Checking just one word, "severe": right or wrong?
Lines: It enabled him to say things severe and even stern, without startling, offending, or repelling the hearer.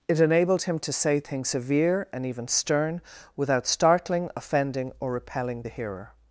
right